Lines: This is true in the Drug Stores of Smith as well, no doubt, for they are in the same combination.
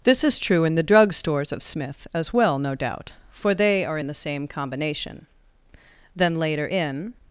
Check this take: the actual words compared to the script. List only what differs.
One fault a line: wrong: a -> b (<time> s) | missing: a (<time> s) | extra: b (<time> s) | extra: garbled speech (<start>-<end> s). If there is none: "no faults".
extra: Then later in (6.1 s)